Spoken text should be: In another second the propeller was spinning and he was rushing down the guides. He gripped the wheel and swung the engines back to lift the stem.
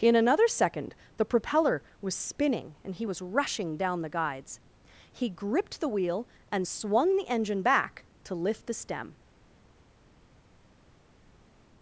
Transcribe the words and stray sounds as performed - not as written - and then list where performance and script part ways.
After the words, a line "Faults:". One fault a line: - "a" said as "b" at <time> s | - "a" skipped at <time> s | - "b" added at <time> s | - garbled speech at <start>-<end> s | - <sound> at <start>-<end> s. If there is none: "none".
In another second the propeller was spinning and he was rushing down the guides. He gripped the wheel and swung the engine back to lift the stem.
Faults:
- "engines" said as "engine" at 7.3 s